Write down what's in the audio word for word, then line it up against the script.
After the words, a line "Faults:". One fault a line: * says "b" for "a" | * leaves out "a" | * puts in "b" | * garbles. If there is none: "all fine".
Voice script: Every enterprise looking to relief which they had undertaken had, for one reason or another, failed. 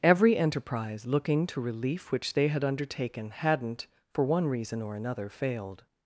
Every enterprise looking to relief which they had undertaken hadn't, for one reason or another, failed.
Faults:
* says "hadn't" for "had"